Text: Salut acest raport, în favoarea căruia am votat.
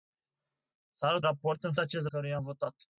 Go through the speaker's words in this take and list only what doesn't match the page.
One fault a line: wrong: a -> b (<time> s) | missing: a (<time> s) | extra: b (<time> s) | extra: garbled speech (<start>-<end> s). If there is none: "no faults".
missing: acest (1.2 s)
wrong: favoarea -> acest (1.8 s)